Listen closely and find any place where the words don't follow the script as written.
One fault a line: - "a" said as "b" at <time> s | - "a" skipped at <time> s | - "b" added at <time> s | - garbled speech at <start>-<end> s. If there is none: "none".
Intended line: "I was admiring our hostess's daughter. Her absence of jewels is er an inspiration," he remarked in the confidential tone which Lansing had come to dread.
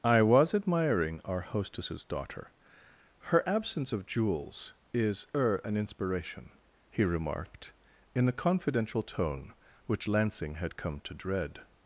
none